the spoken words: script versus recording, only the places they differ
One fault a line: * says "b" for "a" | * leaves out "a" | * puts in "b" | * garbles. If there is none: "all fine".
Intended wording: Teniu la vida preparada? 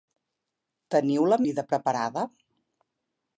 all fine